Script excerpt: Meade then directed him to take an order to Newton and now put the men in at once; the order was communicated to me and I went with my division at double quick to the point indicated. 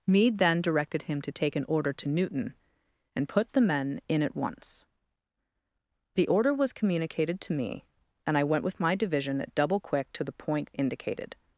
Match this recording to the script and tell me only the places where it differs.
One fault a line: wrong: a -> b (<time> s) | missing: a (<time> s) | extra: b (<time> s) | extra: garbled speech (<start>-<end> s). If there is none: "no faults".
missing: now (3.3 s)